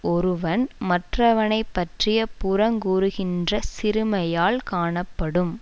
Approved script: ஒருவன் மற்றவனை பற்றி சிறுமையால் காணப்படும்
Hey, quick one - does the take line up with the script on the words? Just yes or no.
no